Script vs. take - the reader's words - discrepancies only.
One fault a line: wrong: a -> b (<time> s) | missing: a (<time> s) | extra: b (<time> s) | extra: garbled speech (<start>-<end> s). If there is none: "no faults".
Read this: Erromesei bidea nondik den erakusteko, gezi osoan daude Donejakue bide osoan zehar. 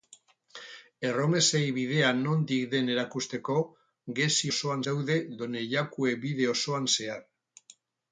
no faults